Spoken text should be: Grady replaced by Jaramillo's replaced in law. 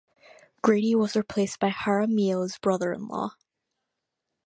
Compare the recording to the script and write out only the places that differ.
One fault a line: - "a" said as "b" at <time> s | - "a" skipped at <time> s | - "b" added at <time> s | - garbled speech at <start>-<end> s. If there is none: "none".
- "was" added at 0.9 s
- "replaced" said as "brother" at 2.5 s